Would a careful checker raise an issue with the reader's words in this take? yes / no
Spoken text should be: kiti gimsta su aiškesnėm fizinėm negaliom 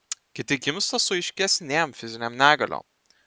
no